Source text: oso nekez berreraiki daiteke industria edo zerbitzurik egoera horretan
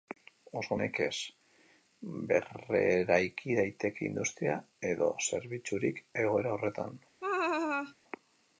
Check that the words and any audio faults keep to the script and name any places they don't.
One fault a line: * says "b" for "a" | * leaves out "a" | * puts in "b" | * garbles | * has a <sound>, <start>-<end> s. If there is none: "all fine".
* has a laugh, 7.2-7.9 s